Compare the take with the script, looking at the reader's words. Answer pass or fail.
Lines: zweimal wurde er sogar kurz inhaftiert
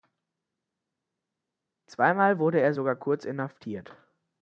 pass